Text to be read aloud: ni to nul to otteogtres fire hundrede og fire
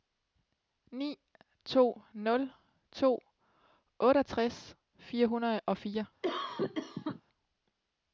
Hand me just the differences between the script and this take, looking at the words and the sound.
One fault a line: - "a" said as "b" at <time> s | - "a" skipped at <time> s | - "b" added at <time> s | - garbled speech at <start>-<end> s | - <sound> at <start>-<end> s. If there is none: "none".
- cough at 6.2-7.2 s